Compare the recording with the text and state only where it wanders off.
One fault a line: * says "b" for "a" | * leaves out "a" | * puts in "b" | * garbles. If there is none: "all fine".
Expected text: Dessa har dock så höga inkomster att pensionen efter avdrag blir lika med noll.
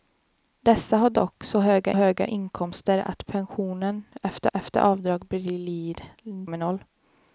* puts in "höga"
* puts in "efter"
* leaves out "lika"